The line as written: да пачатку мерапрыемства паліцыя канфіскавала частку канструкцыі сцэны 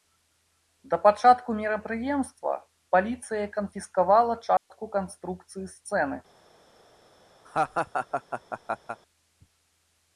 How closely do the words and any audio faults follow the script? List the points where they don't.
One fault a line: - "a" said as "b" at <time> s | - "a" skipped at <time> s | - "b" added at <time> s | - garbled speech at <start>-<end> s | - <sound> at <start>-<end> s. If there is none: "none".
- dropout at 4.6-4.7 s
- laugh at 7.4-9.0 s